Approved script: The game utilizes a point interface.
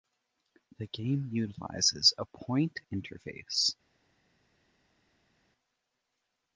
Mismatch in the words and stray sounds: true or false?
false